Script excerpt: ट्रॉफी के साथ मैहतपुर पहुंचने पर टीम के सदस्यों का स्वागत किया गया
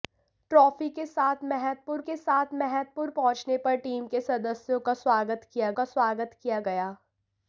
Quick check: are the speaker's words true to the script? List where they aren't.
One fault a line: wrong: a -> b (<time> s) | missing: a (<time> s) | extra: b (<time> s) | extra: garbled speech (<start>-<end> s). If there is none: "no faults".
extra: के साथ मैहतपुर (2.0 s)
extra: का स्वागत किया (5.7 s)